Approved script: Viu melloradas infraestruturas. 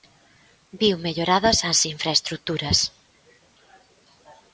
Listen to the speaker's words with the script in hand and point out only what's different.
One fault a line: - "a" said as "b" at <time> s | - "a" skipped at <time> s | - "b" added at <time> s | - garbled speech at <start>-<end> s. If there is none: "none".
- "as" added at 1.7 s